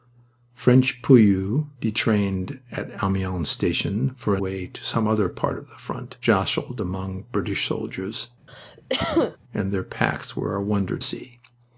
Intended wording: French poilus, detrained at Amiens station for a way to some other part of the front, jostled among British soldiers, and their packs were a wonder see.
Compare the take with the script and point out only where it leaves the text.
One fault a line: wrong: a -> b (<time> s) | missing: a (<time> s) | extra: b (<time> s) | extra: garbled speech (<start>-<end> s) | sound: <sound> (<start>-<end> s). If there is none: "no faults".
sound: cough (8.5-9.4 s)